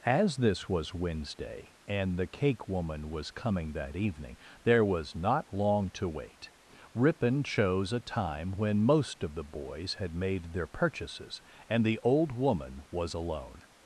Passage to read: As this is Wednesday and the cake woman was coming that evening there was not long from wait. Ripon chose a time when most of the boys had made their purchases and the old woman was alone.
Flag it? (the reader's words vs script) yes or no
yes